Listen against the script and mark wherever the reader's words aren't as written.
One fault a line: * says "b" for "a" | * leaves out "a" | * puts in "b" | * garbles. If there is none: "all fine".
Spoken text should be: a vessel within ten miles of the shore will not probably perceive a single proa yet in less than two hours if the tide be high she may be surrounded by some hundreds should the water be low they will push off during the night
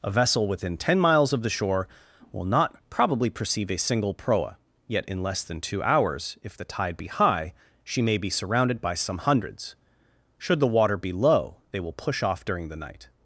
all fine